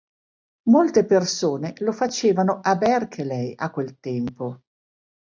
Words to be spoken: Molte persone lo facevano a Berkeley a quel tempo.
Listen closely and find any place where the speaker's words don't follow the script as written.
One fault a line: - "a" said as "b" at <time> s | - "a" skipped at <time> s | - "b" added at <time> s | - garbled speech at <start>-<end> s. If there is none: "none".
none